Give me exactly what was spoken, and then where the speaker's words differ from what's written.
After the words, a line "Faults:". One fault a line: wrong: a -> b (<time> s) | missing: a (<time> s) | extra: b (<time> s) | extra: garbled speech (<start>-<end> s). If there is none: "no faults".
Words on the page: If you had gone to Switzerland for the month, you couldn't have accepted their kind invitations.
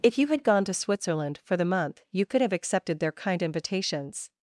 If you had gone to Switzerland for the month, you could have accepted their kind invitations.
Faults:
wrong: couldn't -> could (2.2 s)